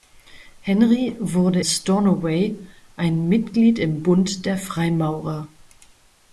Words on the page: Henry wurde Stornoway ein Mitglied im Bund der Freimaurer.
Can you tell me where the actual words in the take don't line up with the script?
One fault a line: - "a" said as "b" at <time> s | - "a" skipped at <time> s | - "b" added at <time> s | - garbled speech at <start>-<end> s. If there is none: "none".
none